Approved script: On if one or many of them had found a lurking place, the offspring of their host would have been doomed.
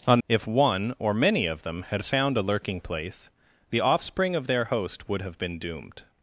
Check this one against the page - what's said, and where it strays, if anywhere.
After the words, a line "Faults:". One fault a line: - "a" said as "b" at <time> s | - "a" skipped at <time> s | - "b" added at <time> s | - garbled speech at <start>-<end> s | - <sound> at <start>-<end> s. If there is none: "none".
On if one or many of them had found a lurking place, the offspring of their host would have been doomed.
Faults:
none